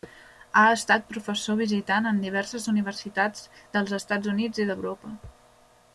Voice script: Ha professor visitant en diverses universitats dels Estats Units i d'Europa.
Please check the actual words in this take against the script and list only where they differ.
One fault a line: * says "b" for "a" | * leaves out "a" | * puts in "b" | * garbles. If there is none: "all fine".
* puts in "estat"